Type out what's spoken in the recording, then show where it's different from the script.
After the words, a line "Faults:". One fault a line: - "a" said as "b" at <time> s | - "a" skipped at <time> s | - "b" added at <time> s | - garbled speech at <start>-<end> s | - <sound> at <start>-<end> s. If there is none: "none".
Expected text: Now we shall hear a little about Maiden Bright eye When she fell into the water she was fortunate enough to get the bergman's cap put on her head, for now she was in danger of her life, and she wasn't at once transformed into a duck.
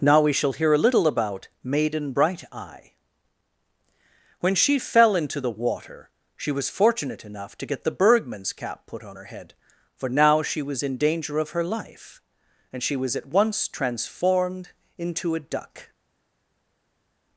Now we shall hear a little about Maiden Bright eye When she fell into the water she was fortunate enough to get the bergman's cap put on her head, for now she was in danger of her life, and she was at once transformed into a duck.
Faults:
- "wasn't" said as "was" at 13.0 s